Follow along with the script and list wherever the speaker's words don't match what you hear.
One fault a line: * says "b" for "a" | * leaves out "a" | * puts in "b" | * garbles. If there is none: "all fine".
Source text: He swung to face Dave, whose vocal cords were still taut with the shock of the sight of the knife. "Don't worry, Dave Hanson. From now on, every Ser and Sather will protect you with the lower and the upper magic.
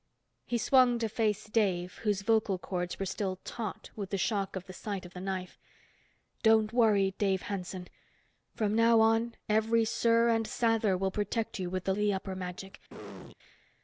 * leaves out "lower and"